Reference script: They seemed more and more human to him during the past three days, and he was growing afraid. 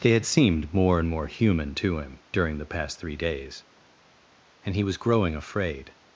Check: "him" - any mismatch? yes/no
no